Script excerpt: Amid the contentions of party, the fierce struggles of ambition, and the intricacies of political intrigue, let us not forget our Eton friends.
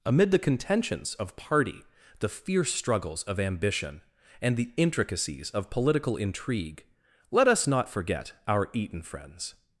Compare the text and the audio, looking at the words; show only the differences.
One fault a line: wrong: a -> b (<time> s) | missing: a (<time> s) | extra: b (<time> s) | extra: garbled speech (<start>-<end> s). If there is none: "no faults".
no faults